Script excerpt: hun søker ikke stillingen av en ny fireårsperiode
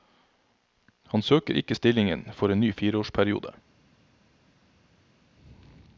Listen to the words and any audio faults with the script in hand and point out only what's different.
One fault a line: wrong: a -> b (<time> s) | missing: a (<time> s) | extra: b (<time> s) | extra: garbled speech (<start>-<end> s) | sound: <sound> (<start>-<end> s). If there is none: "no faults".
wrong: hun -> han (1.1 s)
wrong: av -> for (2.3 s)